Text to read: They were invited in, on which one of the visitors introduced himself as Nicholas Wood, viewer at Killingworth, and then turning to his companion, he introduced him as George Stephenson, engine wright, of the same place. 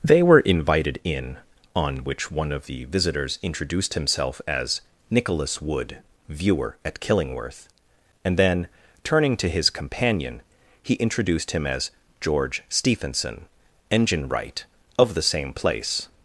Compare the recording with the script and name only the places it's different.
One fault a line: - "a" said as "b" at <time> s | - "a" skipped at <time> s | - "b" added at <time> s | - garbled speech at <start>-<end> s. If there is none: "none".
none